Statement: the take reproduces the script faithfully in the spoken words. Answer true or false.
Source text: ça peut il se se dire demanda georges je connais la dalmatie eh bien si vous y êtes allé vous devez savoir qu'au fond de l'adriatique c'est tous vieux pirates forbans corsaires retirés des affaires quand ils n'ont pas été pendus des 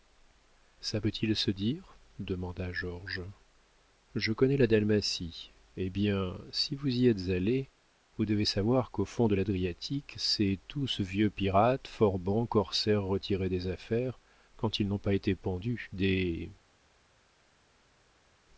false